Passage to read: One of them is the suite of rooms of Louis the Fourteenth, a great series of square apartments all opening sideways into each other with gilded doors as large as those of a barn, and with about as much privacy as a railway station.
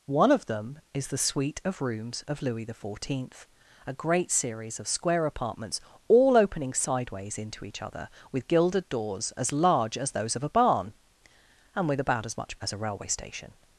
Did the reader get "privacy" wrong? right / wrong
wrong